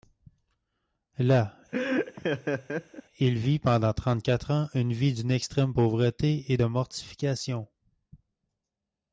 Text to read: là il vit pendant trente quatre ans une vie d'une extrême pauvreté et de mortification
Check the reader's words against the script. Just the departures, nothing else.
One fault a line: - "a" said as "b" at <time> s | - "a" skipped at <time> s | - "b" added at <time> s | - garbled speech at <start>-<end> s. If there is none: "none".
none